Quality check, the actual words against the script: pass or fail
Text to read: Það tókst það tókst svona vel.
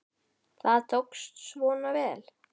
fail